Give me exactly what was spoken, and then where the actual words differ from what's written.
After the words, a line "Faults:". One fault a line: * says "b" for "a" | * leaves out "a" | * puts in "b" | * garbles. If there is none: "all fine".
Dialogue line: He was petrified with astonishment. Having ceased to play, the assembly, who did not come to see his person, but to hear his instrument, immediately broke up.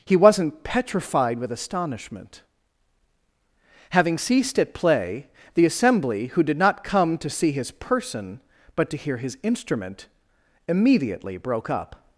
He wasn't petrified with astonishment. Having ceased at play, the assembly, who did not come to see his person, but to hear his instrument, immediately broke up.
Faults:
* says "wasn't" for "was"
* says "at" for "to"